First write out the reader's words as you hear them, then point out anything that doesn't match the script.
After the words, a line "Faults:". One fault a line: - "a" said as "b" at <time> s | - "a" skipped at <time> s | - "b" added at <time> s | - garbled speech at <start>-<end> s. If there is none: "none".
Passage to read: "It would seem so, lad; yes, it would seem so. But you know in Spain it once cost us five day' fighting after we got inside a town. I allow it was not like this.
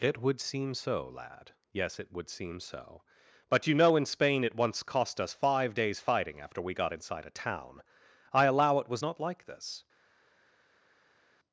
"It would seem so, lad; yes, it would seem so. But you know in Spain it once cost us five days' fighting after we got inside a town. I allow it was not like this.
Faults:
- "day" said as "days" at 5.8 s